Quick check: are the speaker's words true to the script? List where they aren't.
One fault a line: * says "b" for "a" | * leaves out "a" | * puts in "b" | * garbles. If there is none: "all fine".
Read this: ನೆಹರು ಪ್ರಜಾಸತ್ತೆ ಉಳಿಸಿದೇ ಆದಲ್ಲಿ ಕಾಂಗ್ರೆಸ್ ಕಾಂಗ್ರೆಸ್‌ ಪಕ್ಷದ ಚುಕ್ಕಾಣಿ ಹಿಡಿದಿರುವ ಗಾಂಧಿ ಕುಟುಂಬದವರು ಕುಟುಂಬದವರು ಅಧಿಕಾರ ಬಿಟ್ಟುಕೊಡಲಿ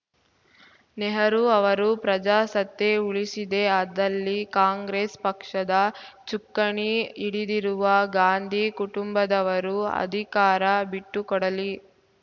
* puts in "ಅವರು"
* leaves out "ಕಾಂಗ್ರೆಸ್"
* leaves out "ಕುಟುಂಬದವರು"